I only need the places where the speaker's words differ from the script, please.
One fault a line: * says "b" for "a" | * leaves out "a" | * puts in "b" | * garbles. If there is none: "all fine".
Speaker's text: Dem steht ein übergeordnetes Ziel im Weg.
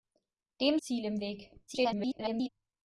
* leaves out "steht ein übergeordnetes"
* garbles